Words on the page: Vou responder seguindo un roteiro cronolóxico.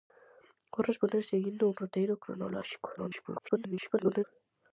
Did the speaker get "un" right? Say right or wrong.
right